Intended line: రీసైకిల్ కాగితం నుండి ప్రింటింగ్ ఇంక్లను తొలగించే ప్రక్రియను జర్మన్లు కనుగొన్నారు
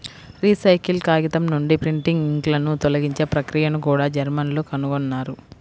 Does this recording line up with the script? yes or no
no